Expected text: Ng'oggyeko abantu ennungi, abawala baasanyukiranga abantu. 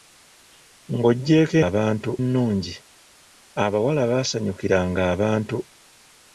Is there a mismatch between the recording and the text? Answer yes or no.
no